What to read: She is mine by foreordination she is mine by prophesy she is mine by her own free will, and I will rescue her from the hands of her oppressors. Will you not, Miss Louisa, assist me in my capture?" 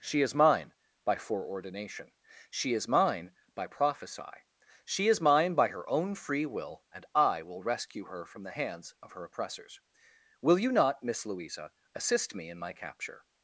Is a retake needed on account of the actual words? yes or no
no